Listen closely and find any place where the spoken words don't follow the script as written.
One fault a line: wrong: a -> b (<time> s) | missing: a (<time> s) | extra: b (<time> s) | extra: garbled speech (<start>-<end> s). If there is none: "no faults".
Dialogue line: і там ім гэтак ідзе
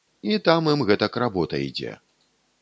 extra: работа (1.2 s)